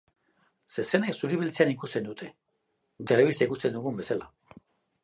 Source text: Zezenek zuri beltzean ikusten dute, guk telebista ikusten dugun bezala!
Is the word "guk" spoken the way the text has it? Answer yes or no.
no